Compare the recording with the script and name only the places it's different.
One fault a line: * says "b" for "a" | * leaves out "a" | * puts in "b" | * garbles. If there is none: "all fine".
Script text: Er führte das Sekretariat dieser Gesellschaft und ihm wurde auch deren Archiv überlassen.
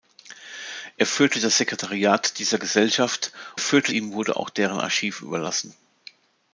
* says "führte" for "und"